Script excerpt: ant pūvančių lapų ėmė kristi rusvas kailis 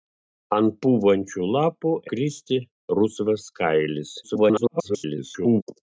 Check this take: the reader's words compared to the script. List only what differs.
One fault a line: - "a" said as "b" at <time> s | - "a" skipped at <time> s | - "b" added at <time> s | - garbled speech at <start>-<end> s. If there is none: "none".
- "ėmė" skipped at 1.9 s
- garbled speech at 4.2-5.6 s